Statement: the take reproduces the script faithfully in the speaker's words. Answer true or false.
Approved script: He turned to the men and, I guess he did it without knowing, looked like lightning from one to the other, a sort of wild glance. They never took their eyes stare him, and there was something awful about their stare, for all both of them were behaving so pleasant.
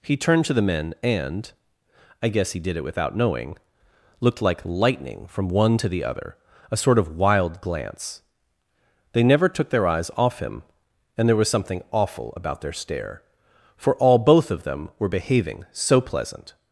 false